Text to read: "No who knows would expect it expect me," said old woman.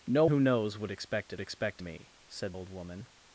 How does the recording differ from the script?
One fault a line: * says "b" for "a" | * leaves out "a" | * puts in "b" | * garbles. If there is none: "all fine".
all fine